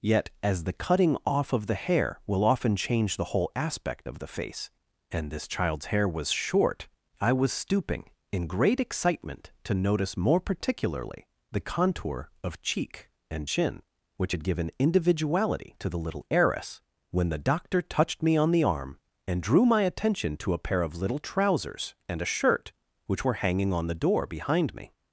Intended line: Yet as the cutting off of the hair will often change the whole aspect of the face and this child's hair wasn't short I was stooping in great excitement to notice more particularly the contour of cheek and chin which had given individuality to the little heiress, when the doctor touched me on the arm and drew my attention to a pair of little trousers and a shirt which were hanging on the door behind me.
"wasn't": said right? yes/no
no